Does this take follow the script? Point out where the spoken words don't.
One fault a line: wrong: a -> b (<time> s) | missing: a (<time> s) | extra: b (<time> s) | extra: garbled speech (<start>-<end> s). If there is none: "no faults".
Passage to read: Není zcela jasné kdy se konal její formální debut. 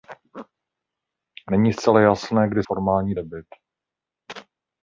missing: se konal její (2.6 s)